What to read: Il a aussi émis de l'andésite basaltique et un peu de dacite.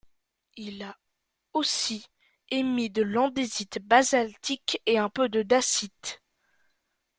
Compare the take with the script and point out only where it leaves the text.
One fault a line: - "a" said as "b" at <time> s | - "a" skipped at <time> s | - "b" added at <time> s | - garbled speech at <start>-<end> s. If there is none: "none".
none